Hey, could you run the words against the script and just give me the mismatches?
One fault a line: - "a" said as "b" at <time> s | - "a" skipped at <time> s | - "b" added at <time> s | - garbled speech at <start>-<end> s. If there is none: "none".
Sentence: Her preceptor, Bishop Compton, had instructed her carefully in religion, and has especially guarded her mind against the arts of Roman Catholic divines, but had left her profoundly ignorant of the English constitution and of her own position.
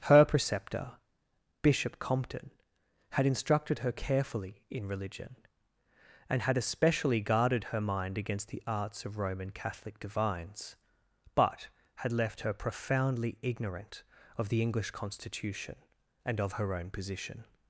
- "has" said as "had" at 6.4 s